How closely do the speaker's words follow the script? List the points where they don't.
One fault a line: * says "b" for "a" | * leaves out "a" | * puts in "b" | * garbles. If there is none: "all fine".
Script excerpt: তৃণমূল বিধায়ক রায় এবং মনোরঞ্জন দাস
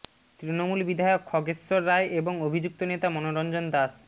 * puts in "খগেশ্বর"
* puts in "অভিযুক্ত নেতা"